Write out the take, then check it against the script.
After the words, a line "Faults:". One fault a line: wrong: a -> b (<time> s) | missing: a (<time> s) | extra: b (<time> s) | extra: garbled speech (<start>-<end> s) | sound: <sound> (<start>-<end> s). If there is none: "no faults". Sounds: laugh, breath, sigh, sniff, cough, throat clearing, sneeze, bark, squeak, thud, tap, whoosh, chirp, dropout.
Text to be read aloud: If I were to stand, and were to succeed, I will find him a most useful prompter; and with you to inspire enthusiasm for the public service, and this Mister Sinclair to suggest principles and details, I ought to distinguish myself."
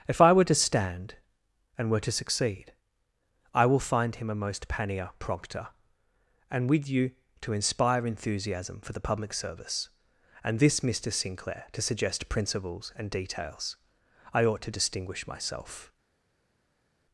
If I were to stand, and were to succeed, I will find him a most pannier prompter; and with you to inspire enthusiasm for the public service, and this Mister Sinclair to suggest principles and details, I ought to distinguish myself."
Faults:
wrong: useful -> pannier (4.7 s)